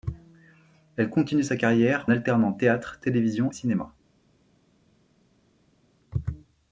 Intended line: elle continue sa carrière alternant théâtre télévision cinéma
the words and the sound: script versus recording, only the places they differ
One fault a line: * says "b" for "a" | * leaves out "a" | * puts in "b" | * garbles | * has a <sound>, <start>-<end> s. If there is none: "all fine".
all fine